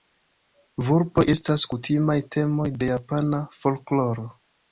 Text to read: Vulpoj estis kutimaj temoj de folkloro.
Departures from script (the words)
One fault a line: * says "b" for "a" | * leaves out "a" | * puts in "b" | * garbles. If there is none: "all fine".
* says "estas" for "estis"
* puts in "japana"